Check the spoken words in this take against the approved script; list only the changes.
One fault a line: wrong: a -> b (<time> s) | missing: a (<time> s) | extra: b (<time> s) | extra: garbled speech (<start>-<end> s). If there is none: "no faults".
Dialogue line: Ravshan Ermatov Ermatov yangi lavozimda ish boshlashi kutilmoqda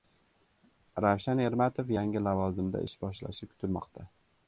missing: Ermatov (1.9 s)